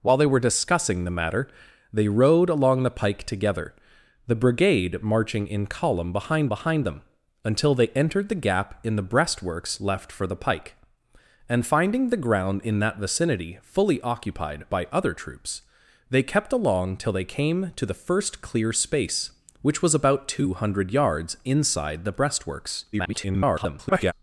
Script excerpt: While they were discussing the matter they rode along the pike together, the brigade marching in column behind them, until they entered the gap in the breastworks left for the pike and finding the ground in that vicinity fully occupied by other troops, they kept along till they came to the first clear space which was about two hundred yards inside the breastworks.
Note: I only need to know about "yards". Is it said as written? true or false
true